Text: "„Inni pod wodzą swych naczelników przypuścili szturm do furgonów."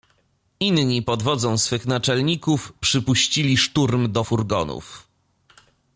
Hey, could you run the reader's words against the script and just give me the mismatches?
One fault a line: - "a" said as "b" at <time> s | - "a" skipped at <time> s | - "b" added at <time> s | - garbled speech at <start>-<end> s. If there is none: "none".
none